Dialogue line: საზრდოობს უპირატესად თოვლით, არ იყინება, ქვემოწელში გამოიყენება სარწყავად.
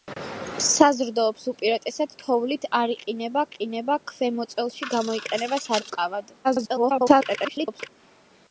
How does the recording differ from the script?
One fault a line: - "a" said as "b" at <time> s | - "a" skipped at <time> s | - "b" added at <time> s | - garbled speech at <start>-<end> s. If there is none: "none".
- "იყინება" added at 3.5 s
- garbled speech at 6.4-7.9 s